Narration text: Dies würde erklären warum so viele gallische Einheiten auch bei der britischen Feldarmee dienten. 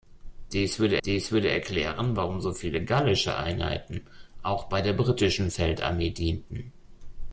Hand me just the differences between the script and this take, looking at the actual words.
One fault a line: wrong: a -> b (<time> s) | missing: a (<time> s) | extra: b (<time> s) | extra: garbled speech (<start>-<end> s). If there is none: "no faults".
extra: dies würde (1.0 s)